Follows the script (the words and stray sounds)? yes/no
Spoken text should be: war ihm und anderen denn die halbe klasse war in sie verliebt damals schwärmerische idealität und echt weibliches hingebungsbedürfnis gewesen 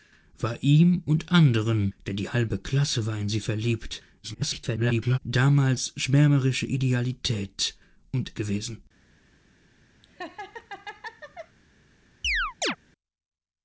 no